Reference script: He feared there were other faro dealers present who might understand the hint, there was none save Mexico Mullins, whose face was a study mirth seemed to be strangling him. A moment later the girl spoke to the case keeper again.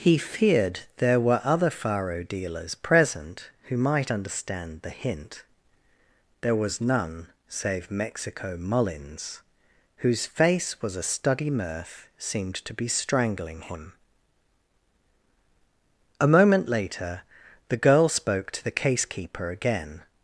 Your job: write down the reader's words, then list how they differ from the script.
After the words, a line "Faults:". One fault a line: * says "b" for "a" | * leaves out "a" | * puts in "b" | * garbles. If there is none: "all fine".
He feared there were other faro dealers present who might understand the hint, there was none save Mexico Mullins, whose face was a study mirth seemed to be strangling him. A moment later the girl spoke to the case keeper again.
Faults:
all fine